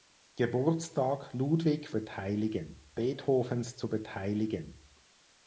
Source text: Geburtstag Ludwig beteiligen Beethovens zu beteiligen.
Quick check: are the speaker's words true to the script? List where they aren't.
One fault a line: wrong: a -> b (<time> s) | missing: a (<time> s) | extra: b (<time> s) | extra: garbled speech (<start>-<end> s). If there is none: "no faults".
no faults